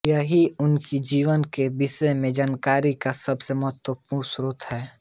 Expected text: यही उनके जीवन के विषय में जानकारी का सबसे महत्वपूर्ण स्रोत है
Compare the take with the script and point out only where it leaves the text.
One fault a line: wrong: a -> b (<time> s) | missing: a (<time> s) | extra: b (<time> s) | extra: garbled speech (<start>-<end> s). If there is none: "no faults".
no faults